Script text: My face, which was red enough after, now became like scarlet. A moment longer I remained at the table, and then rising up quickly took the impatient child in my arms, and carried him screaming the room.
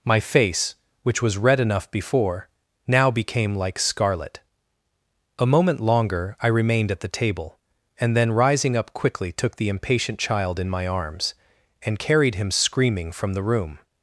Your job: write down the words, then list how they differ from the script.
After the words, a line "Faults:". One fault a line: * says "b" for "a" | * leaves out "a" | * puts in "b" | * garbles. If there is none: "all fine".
My face, which was red enough before, now became like scarlet. A moment longer I remained at the table, and then rising up quickly took the impatient child in my arms, and carried him screaming from the room.
Faults:
* says "before" for "after"
* puts in "from"